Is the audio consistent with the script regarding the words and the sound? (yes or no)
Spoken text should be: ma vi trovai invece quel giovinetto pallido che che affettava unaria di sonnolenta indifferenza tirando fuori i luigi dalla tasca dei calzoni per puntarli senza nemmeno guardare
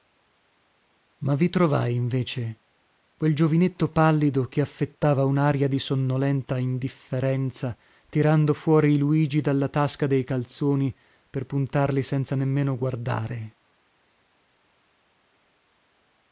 no